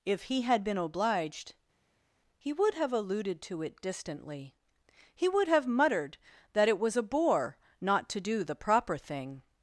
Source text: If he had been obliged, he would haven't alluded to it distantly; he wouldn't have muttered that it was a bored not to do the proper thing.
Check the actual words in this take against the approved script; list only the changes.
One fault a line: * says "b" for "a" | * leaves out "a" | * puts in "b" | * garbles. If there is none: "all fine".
* says "have" for "haven't"
* says "would" for "wouldn't"
* says "bore" for "bored"